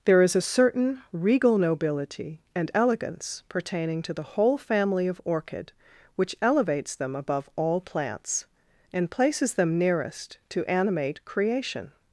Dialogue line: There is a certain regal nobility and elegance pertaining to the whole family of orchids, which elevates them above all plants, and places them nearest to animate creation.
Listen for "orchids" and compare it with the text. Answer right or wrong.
wrong